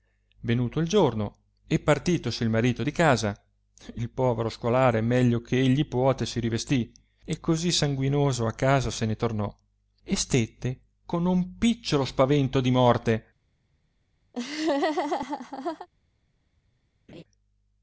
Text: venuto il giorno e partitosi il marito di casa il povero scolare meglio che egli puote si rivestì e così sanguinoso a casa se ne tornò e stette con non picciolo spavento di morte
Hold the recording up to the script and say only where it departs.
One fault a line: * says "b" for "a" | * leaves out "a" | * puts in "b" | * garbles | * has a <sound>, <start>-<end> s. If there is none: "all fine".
* has a laugh, 14.3-15.9 s
* has a laugh, 17.1-17.2 s